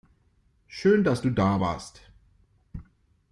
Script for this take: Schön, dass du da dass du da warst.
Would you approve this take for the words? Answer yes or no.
no